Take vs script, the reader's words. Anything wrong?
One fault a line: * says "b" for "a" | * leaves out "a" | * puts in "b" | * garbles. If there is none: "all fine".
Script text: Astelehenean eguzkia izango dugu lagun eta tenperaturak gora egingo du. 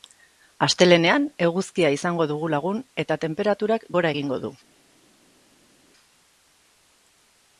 all fine